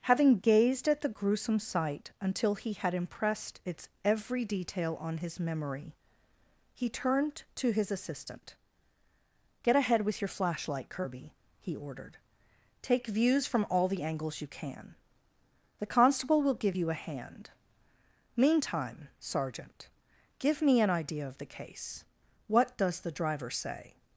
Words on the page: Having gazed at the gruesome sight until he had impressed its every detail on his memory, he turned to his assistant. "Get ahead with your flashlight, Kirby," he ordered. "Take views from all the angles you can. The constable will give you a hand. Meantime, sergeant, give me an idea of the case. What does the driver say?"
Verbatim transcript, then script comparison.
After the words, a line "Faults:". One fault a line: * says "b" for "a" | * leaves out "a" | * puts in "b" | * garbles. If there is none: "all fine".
Having gazed at the gruesome sight until he had impressed its every detail on his memory, he turned to his assistant. "Get ahead with your flashlight, Kirby," he ordered. "Take views from all the angles you can. The constable will give you a hand. Meantime, sergeant, give me an idea of the case. What does the driver say?"
Faults:
all fine